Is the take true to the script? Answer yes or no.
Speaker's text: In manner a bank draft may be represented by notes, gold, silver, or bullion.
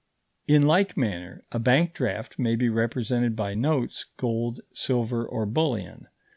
no